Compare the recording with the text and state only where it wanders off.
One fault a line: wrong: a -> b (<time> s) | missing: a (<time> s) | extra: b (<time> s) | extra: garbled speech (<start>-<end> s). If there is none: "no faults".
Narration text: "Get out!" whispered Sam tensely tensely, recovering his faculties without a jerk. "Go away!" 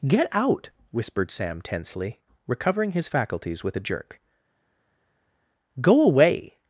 missing: tensely (2.2 s)
wrong: without -> with (3.6 s)